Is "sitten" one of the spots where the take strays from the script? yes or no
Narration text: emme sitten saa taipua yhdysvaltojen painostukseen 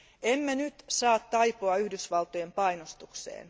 yes